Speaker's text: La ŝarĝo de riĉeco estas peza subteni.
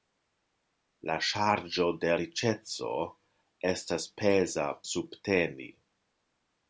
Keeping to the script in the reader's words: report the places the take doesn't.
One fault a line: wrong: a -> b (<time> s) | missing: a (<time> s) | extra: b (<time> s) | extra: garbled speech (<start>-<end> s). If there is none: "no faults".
no faults